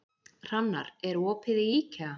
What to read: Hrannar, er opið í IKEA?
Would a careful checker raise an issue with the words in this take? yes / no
no